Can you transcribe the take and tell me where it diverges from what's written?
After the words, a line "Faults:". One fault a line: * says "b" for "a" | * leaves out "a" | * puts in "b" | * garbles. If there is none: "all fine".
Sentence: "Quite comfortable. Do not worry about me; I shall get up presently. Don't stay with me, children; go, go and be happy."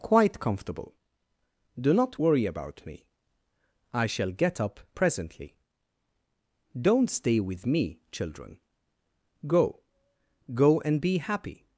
"Quite comfortable. Do not worry about me; I shall get up presently. Don't stay with me, children; go, go and be happy."
Faults:
all fine